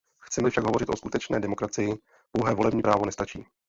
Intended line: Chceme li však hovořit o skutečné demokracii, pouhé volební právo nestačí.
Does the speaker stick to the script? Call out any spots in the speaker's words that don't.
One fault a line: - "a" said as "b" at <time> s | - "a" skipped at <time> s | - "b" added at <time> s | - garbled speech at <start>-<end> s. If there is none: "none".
none